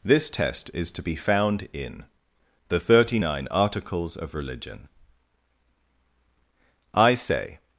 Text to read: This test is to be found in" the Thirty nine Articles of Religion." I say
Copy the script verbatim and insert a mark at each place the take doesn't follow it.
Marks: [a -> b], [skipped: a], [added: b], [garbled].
This test is to be found in" the Thirty nine Articles of Religion." I say